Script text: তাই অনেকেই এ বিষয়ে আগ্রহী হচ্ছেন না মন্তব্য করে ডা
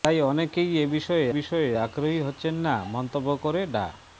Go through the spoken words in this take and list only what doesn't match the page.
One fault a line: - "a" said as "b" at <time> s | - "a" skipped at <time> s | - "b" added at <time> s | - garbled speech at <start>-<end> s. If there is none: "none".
- "বিষয়ে" added at 1.3 s